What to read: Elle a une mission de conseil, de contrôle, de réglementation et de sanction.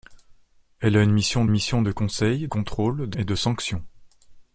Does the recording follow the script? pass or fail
fail